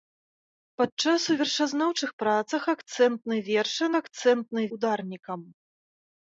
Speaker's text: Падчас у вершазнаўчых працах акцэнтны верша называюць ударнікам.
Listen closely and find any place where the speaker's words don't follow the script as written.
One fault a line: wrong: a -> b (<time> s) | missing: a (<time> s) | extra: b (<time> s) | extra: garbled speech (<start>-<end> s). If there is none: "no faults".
wrong: называюць -> акцэнтны (4.0 s)